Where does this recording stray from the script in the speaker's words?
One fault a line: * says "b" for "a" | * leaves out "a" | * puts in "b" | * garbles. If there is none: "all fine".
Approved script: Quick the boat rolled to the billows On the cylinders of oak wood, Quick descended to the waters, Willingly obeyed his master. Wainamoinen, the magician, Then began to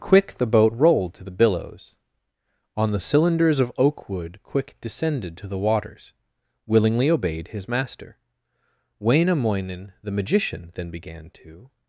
all fine